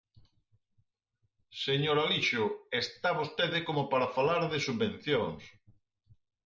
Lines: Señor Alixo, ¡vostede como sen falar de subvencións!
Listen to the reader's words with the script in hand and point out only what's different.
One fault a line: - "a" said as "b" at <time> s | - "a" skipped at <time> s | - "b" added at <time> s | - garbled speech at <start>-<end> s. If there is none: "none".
- "está" added at 2.8 s
- "sen" said as "para" at 3.9 s